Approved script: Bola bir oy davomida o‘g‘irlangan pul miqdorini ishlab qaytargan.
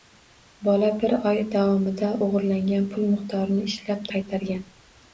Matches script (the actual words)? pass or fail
pass